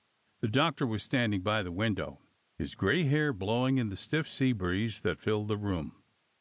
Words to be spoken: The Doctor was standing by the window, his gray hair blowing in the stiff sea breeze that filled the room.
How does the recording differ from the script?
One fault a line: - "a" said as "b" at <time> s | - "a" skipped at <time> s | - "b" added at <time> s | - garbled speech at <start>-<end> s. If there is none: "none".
none